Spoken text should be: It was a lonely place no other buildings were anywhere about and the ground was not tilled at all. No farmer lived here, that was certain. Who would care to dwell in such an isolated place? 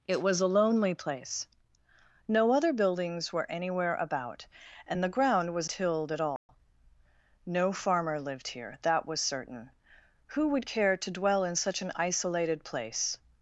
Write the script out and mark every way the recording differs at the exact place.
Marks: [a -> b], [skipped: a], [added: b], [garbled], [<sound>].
It was a lonely place no other buildings were anywhere about and the ground was [skipped: not] tilled at all. [dropout] No farmer lived here, that was certain. Who would care to dwell in such an isolated place?